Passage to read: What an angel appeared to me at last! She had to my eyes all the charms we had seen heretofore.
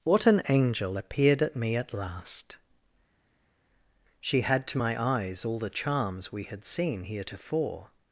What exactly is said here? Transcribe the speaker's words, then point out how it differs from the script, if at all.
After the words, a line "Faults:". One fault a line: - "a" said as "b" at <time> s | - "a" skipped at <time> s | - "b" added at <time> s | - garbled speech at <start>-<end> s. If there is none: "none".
What an angel appeared at me at last! She had to my eyes all the charms we had seen heretofore.
Faults:
- "to" said as "at" at 1.4 s